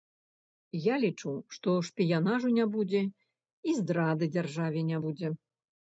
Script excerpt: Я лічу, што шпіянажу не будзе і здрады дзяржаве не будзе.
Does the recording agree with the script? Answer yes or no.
yes